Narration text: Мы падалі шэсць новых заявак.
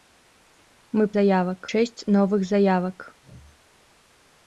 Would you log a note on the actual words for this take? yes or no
yes